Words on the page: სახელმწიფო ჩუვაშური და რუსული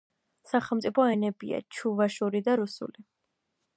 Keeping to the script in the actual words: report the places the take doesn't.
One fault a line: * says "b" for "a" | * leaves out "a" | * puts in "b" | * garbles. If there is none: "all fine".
* puts in "ენებია"